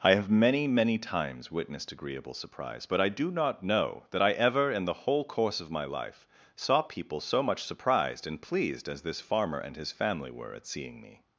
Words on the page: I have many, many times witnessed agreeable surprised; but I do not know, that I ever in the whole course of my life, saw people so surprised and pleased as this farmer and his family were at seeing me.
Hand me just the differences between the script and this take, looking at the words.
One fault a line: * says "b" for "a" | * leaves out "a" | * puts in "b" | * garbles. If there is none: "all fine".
* says "surprise" for "surprised"
* puts in "much"